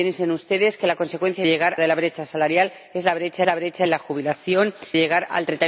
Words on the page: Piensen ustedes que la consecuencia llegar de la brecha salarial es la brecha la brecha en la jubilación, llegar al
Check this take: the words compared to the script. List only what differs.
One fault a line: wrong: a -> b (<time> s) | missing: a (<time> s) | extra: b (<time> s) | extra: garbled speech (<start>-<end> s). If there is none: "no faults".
no faults